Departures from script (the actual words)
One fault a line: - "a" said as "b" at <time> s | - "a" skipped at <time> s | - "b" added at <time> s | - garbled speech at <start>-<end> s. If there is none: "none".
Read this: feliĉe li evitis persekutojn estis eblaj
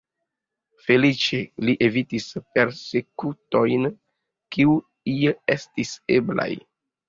- "kiuj" added at 4.6 s